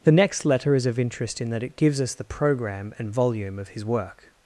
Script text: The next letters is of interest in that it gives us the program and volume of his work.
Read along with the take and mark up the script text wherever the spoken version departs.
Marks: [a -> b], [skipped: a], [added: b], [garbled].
The next [letters -> letter] is of interest in that it gives us the program and volume of his work.